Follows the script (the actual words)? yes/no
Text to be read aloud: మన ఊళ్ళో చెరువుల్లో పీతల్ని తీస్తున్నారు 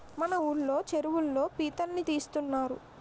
yes